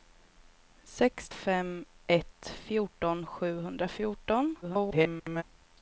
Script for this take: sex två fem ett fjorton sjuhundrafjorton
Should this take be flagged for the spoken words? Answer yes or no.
yes